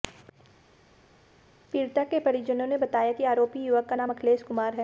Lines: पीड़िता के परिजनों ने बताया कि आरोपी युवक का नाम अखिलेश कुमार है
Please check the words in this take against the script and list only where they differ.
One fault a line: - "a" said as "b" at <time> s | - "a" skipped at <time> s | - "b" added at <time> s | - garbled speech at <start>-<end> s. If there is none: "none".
none